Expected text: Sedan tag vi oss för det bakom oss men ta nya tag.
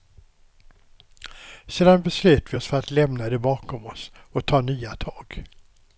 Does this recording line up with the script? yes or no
no